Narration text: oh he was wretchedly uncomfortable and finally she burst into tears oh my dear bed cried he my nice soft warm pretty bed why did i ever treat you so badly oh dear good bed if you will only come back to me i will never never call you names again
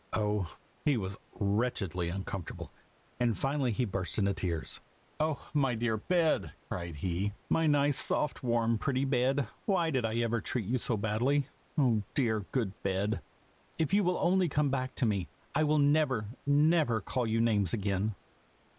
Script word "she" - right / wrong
wrong